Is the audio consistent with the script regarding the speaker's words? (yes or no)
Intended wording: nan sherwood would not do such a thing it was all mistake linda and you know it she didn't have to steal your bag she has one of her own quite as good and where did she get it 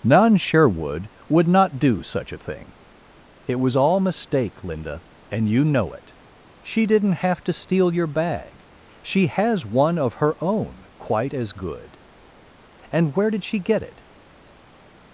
yes